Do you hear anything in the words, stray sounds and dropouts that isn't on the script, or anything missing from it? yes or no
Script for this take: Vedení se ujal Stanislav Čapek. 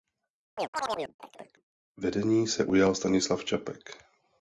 yes